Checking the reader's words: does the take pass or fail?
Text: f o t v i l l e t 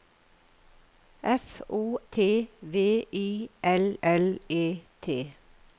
pass